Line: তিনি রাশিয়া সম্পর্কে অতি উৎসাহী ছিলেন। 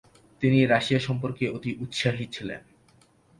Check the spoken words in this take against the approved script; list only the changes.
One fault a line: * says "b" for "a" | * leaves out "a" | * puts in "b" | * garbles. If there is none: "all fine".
all fine